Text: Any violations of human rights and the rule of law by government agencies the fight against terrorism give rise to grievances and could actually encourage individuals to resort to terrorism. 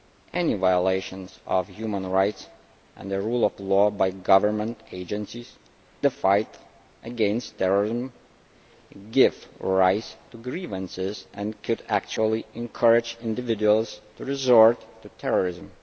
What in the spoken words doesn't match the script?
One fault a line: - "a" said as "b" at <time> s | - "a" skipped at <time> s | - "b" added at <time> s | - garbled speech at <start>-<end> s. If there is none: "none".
none